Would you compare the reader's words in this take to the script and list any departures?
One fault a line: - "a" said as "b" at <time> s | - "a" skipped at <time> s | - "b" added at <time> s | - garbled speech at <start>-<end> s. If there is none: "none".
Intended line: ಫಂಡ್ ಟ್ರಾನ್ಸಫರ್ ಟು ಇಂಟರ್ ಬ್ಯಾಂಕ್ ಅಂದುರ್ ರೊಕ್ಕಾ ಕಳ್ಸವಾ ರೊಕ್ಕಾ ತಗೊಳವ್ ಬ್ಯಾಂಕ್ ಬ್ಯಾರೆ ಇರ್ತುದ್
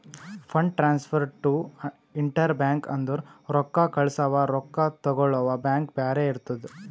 none